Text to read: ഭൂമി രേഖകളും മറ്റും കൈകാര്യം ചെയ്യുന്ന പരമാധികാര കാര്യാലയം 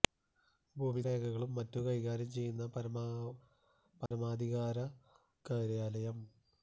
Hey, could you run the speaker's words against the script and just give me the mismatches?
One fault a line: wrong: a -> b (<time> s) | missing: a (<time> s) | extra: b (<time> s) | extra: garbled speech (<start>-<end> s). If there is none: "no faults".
no faults